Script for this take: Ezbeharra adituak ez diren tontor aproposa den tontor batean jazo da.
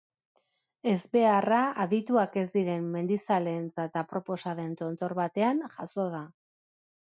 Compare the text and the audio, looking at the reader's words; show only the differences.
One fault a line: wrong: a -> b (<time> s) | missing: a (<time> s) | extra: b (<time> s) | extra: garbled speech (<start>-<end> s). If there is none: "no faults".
wrong: tontor -> mendizaleentzat (3.0 s)